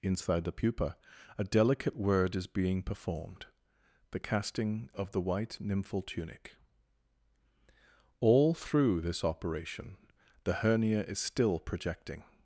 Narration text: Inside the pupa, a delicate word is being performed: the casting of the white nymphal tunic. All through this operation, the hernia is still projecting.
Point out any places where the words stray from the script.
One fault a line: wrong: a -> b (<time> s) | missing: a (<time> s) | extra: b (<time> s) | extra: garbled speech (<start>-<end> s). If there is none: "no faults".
no faults